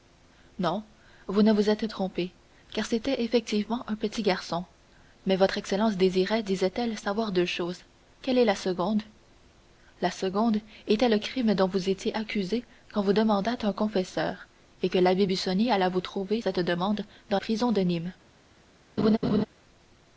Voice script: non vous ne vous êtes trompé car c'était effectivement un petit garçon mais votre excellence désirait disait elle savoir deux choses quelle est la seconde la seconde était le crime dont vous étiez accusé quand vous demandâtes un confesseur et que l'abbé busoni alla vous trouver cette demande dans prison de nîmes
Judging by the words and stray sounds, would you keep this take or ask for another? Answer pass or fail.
fail